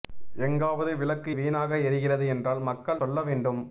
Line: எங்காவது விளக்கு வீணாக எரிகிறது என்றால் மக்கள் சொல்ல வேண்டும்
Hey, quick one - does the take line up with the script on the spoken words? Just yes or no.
yes